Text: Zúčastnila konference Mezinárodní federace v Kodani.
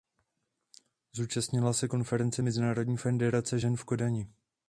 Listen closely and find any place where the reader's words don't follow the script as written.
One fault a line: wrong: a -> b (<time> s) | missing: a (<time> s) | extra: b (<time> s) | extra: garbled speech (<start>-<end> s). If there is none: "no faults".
extra: se (1.7 s)
extra: žen (3.6 s)